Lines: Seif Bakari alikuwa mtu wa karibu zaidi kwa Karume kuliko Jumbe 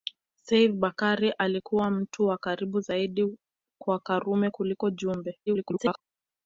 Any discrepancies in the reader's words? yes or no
yes